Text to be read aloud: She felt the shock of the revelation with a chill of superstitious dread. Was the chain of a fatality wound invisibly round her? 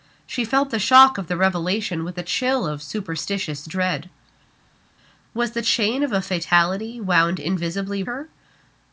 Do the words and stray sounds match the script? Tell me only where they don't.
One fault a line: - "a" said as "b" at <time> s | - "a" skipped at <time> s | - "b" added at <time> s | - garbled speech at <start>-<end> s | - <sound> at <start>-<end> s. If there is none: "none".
- "round" skipped at 8.0 s